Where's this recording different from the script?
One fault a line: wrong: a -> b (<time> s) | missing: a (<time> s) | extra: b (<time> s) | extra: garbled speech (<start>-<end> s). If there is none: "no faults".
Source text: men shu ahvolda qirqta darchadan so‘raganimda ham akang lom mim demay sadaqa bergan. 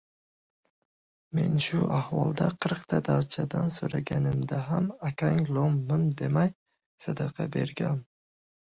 no faults